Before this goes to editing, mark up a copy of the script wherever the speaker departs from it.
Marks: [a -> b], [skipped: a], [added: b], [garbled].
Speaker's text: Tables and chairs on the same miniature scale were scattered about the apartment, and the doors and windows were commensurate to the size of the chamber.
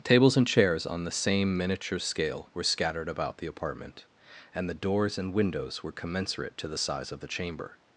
Tables and chairs on the same miniature scale were scattered about the apartment, and the doors and windows were commensurate to the size of the chamber.